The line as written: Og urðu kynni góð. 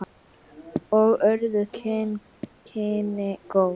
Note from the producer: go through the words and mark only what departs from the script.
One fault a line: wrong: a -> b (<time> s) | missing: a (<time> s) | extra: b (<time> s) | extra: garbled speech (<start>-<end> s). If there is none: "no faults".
no faults